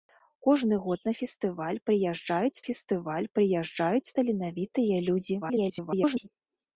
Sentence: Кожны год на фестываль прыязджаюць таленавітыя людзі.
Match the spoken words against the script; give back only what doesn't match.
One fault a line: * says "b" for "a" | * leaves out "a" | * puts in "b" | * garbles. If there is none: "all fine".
* puts in "фестываль прыязджаюць"
* garbles